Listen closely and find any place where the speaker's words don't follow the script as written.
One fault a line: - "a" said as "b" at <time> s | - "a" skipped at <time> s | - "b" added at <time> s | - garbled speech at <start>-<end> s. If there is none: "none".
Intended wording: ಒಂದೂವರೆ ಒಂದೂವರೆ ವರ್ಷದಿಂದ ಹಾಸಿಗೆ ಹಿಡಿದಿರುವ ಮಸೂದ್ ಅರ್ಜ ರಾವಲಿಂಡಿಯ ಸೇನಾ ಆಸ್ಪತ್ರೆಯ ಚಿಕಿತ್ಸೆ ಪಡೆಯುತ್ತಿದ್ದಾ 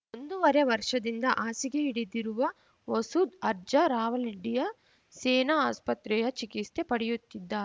- "ಒಂದೂವರೆ" skipped at 0.6 s